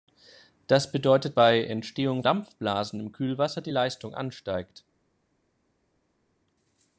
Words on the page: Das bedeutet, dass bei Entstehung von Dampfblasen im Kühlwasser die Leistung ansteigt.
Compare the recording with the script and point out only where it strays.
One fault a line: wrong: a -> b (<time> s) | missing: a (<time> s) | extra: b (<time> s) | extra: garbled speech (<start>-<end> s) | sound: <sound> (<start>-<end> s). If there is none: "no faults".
missing: dass (1.4 s)
missing: von (2.2 s)